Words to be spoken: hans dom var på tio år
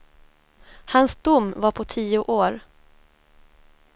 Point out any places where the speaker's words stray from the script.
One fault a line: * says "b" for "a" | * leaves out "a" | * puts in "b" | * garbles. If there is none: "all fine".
all fine